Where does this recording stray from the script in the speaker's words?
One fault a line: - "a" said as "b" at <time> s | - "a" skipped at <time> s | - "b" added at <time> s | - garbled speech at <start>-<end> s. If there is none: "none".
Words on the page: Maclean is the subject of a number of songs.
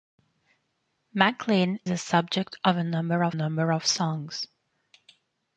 - "is" skipped at 1.8 s
- "number of" added at 3.3 s